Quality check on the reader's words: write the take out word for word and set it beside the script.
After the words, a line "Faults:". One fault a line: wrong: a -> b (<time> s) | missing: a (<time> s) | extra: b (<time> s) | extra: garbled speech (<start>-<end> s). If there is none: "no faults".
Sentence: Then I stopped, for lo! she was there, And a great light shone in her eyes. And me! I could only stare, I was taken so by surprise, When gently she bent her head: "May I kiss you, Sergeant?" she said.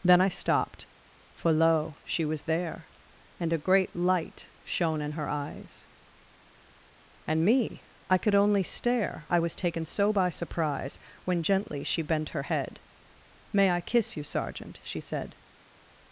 Then I stopped, for lo! she was there, And a great light shone in her eyes. And me! I could only stare, I was taken so by surprise, When gently she bent her head: "May I kiss you, Sergeant?" she said.
Faults:
no faults